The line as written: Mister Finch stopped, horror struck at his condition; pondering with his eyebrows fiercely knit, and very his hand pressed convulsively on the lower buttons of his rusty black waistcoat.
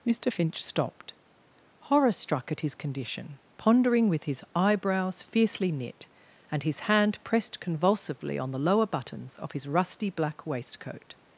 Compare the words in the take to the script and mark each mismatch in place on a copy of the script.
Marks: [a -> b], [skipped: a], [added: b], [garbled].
Mister Finch stopped, horror struck at his condition; pondering with his eyebrows fiercely knit, and [skipped: very] his hand pressed convulsively on the lower buttons of his rusty black waistcoat.